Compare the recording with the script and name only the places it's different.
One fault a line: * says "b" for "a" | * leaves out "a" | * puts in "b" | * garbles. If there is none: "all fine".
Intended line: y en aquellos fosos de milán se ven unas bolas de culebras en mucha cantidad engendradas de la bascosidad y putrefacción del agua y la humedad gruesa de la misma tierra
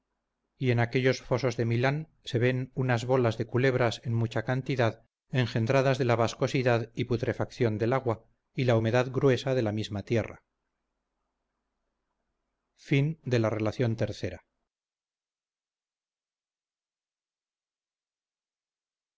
all fine